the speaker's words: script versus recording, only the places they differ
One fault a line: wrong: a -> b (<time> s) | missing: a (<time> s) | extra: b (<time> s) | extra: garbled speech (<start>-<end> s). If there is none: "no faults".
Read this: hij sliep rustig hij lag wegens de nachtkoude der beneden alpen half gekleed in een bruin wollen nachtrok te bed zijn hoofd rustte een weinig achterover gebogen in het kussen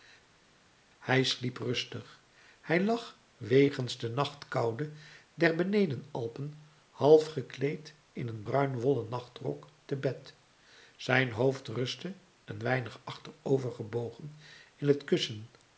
no faults